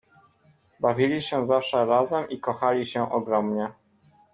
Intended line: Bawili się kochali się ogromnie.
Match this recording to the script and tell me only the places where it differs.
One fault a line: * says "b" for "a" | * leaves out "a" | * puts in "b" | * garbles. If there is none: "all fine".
* puts in "zawsze razem i"